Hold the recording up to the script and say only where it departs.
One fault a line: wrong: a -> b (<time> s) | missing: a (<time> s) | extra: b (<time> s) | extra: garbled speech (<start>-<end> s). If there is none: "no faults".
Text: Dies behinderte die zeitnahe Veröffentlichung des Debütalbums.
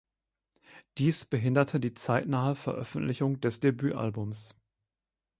no faults